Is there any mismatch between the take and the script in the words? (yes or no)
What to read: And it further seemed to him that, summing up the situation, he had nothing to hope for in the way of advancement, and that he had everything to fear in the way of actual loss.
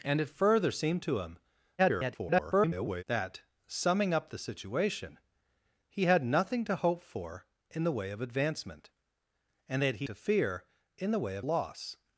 yes